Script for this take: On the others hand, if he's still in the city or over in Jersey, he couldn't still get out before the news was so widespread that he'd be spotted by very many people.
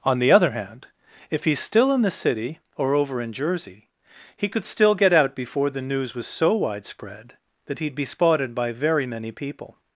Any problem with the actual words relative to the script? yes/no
yes